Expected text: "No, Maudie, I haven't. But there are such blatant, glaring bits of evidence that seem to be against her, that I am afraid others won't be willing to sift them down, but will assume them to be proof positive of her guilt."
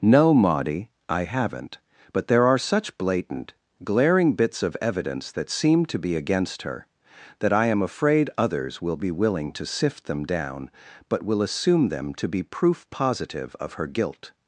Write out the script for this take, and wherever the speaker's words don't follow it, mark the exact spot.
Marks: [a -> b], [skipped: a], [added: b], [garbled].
"No, Maudie, I haven't. But there are such blatant, glaring bits of evidence that seem to be against her, that I am afraid others [won't -> will] be willing to sift them down, but will assume them to be proof positive of her guilt."